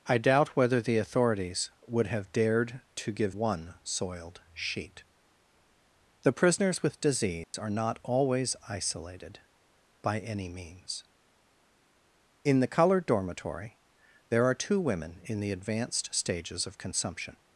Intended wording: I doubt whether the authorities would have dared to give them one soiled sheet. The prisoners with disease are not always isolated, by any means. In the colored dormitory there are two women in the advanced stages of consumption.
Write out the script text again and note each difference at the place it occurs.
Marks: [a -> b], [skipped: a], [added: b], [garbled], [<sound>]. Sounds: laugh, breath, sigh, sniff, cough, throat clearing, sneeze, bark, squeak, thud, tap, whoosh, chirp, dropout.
I doubt whether the authorities would have dared to give [skipped: them] one soiled sheet. The prisoners with disease [dropout] are not always isolated, by any means. In the colored dormitory there are two women in the advanced stages of consumption.